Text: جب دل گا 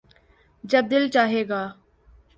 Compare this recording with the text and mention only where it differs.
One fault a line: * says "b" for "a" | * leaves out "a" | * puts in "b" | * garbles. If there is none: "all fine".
* puts in "چاھے"